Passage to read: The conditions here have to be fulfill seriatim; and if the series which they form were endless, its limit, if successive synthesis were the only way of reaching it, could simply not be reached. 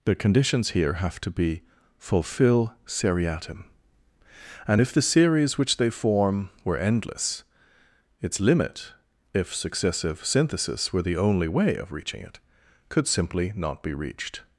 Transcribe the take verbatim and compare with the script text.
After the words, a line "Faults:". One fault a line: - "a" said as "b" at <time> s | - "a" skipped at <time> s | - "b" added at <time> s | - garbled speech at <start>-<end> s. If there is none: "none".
The conditions here have to be fulfill seriatim; and if the series which they form were endless, its limit, if successive synthesis were the only way of reaching it, could simply not be reached.
Faults:
none